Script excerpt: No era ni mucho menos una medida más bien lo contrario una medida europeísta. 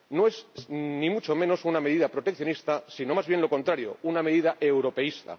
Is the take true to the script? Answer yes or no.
no